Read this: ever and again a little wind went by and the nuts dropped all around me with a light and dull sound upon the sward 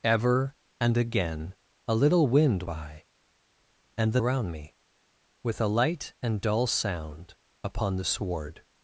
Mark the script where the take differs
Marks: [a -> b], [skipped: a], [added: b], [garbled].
ever and again a little wind [skipped: went] by and the [skipped: nuts dropped all] around me with a light and dull sound upon the sward